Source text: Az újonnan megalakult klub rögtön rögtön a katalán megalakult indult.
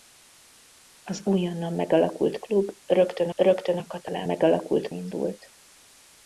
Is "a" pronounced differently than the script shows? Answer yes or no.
no